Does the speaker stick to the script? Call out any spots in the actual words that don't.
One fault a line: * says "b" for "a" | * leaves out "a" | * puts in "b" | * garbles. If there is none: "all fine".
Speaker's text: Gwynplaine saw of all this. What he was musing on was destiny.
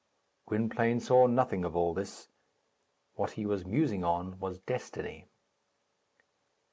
* puts in "nothing"